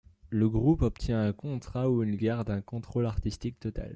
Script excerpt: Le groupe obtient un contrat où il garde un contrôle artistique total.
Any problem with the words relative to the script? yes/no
no